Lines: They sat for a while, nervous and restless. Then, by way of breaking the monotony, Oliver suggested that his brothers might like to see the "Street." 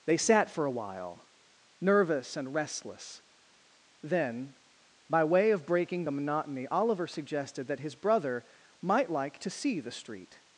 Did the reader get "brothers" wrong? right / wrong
wrong